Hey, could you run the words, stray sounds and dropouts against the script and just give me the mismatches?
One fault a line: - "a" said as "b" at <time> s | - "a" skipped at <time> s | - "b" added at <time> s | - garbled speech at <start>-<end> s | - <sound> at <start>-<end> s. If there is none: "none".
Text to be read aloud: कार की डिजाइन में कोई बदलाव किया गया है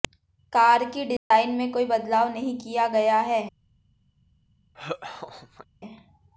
- dropout at 1.2-1.3 s
- "नहीं" added at 2.3 s
- laugh at 4.7-5.7 s